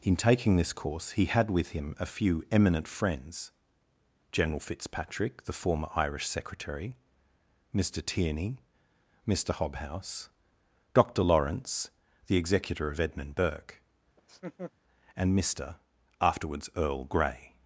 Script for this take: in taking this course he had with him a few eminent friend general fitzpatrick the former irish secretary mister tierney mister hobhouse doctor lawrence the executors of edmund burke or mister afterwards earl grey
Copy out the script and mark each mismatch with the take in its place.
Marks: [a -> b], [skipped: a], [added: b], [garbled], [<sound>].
in taking this course he had with him a few eminent [friend -> friends] general fitzpatrick the former irish secretary mister tierney mister hobhouse doctor lawrence the [executors -> executor] of edmund burke [laugh] [or -> and] mister afterwards earl grey